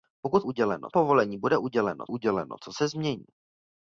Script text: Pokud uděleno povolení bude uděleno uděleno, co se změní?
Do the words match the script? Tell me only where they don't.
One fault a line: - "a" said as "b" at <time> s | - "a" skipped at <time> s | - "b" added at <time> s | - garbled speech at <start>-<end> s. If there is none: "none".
none